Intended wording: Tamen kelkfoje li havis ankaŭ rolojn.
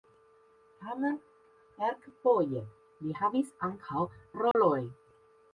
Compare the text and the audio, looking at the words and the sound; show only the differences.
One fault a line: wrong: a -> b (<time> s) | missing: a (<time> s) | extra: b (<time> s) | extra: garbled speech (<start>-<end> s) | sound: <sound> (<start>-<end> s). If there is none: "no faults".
sound: dropout (4.5-4.5 s)